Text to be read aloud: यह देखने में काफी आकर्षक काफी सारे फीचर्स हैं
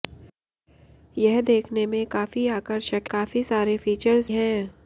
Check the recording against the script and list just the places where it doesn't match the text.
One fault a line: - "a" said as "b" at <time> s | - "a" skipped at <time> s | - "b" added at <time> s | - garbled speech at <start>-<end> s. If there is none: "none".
none